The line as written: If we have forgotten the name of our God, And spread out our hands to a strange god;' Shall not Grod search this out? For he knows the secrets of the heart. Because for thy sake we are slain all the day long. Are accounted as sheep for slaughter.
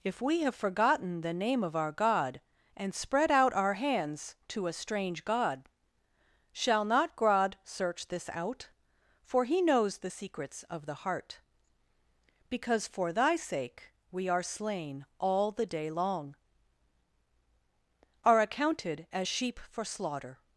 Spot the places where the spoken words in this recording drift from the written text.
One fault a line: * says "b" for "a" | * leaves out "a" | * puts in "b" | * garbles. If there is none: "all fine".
all fine